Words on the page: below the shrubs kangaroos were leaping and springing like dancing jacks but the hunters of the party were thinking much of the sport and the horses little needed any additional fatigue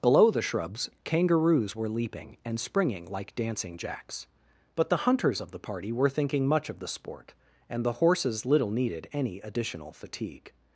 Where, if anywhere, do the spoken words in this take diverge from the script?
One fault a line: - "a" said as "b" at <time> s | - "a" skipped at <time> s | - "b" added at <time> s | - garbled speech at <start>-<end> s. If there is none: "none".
none